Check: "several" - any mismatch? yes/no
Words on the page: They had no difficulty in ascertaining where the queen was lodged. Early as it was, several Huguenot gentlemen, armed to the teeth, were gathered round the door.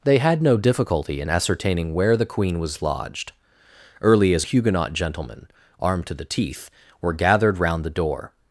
yes